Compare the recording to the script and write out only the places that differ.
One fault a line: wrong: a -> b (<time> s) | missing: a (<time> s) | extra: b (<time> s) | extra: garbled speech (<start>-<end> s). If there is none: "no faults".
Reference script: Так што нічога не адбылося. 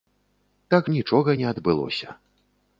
missing: што (0.9 s)